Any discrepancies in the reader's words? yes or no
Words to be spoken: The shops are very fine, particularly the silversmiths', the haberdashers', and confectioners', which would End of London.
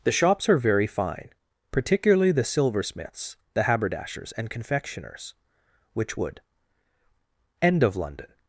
no